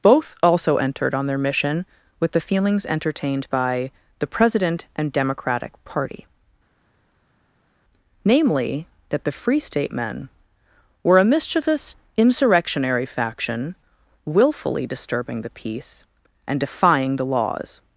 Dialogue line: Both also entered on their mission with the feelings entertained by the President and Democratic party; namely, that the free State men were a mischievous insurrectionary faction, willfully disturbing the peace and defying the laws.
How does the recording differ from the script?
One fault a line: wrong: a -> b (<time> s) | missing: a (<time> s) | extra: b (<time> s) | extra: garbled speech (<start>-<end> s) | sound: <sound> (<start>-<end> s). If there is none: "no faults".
no faults